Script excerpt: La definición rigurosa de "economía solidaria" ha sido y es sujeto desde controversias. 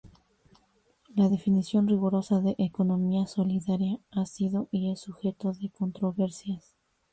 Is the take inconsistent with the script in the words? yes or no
yes